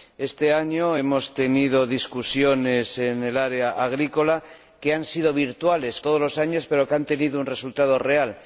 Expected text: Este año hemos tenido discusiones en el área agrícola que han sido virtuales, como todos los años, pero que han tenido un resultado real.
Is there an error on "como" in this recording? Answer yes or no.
yes